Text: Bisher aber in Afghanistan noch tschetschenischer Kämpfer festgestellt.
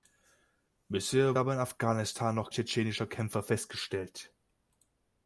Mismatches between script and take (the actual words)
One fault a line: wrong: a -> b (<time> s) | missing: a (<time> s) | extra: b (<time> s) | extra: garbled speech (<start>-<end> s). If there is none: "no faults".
no faults